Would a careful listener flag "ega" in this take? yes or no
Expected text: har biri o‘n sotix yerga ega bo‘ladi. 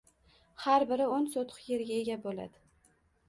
no